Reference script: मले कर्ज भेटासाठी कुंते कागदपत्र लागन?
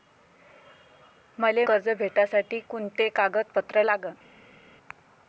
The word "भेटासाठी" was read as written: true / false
true